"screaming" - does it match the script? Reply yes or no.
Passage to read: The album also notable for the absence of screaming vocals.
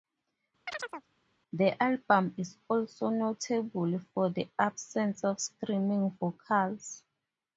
yes